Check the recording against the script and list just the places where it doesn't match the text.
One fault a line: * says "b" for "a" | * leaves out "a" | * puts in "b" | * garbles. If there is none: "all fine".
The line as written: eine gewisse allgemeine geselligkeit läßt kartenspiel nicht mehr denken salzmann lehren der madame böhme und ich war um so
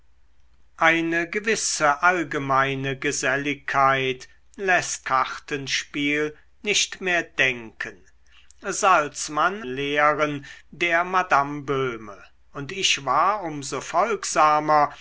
all fine